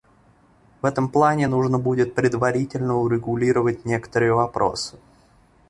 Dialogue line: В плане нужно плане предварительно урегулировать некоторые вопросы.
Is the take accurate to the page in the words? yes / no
no